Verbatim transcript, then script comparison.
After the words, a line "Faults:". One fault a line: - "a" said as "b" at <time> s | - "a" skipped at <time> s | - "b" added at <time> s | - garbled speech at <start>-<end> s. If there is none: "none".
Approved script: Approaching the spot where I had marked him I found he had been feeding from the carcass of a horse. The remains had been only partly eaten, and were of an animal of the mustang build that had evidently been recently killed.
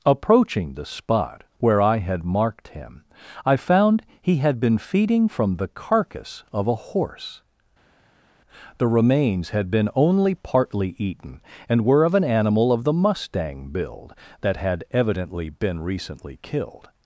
Approaching the spot where I had marked him I found he had been feeding from the carcass of a horse. The remains had been only partly eaten, and were of an animal of the mustang build that had evidently been recently killed.
Faults:
none